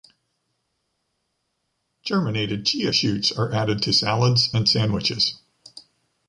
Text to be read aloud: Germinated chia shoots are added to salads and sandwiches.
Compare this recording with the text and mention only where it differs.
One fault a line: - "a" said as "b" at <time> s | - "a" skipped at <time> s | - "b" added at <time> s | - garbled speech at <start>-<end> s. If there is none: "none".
none